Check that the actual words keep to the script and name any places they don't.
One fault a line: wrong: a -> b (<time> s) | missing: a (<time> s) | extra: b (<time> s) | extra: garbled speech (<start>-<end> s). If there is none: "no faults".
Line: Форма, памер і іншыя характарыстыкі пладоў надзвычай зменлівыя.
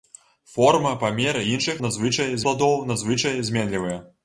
wrong: характарыстыкі -> надзвычай (1.9 s)